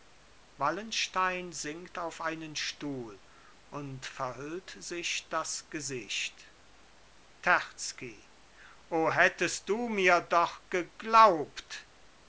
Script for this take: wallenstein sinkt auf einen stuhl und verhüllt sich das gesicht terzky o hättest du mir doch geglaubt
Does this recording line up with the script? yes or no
yes